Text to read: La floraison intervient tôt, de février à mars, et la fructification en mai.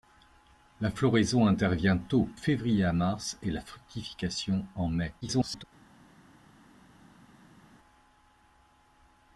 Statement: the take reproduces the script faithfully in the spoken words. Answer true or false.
false